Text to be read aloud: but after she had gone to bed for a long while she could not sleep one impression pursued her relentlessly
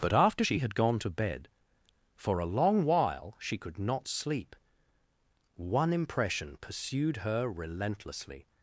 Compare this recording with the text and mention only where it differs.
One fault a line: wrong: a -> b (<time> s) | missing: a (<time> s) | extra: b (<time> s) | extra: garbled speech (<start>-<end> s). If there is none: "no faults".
no faults